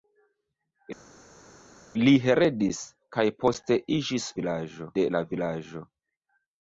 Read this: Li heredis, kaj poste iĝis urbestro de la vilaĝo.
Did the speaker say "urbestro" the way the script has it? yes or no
no